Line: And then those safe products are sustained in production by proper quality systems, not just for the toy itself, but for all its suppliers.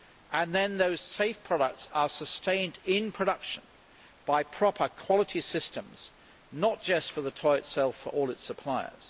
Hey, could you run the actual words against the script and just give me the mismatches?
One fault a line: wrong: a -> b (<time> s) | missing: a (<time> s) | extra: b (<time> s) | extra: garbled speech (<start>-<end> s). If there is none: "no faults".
no faults